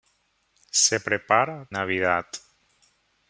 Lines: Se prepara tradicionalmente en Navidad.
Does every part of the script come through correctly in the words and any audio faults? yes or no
no